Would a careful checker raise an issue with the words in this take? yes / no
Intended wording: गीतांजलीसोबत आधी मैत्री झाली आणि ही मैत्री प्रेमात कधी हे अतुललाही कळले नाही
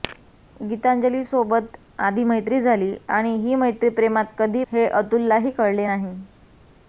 no